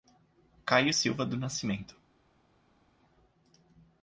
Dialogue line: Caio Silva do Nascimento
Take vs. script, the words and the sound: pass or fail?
pass